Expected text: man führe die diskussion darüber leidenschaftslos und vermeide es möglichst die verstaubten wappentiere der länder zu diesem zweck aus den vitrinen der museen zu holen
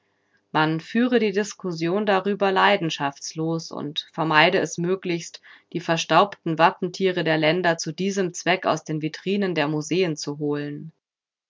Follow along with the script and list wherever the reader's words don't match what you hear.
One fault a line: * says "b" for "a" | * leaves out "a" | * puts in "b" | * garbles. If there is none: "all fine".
all fine